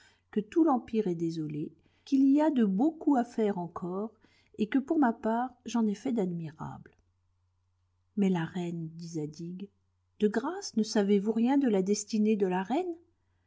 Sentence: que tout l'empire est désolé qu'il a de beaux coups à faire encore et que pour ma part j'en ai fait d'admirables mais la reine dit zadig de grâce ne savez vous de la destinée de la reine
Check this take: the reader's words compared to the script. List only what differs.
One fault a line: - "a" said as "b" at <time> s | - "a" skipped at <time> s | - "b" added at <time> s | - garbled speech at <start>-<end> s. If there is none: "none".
- "y" added at 2.3 s
- "rien" added at 11.3 s